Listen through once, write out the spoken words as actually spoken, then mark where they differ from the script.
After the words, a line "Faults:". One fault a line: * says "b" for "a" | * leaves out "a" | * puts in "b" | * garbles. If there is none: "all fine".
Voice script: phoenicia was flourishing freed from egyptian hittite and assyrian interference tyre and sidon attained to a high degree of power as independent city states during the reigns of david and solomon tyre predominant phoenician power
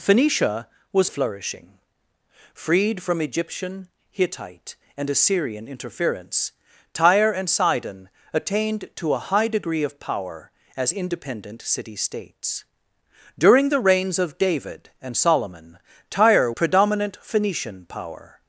phoenicia was flourishing freed from egyptian hittite and assyrian interference tyre and sidon attained to a high degree of power as independent city states during the reigns of david and solomon tyre predominant phoenician power
Faults:
all fine